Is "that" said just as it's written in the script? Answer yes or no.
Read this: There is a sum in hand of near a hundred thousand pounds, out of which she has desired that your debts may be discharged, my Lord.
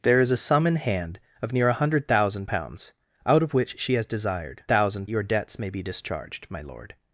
no